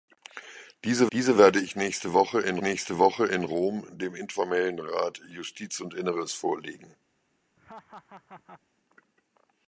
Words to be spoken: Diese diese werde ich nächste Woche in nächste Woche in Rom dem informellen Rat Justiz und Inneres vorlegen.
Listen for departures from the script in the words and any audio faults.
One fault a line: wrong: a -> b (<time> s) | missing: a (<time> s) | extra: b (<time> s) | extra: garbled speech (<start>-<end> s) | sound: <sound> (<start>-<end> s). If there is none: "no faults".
sound: laugh (7.6-8.6 s)